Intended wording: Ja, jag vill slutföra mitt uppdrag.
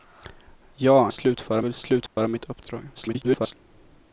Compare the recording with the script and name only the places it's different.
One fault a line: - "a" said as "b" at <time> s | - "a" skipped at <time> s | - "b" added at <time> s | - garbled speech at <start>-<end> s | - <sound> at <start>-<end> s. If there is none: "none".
- "jag" said as "slutföra" at 1.1 s
- dropout at 2.1-2.2 s
- garbled speech at 2.9-3.5 s